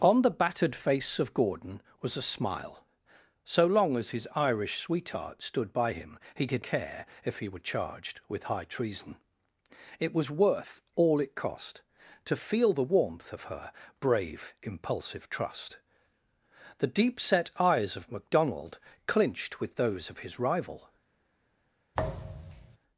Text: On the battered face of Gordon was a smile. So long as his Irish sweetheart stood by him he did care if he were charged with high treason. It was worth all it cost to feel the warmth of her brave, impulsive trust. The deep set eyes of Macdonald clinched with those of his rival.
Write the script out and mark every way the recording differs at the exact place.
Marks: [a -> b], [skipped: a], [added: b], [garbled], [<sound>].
On the battered face of Gordon was a smile. So long as his Irish sweetheart stood by him he did care if he were charged with high treason. It was worth all it cost to feel the warmth of her brave, impulsive trust. The deep set eyes of Macdonald clinched with those of his rival. [thud]